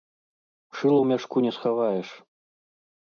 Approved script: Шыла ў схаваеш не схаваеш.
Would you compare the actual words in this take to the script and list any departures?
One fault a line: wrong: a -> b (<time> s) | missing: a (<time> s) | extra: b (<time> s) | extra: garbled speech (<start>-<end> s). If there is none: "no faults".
wrong: схаваеш -> мяшку (1.1 s)